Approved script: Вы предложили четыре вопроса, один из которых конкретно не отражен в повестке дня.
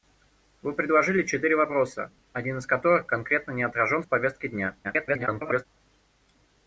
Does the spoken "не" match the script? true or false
true